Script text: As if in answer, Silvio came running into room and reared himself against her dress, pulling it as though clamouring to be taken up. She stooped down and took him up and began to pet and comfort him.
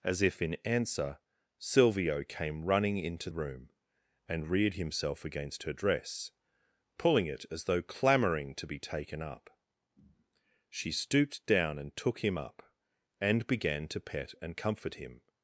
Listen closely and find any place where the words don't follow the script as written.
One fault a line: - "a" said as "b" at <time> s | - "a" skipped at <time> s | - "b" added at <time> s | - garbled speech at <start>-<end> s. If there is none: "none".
none